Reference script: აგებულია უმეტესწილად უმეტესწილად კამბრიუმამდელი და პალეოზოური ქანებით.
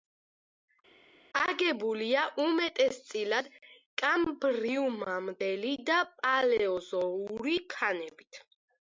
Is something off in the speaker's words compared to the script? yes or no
yes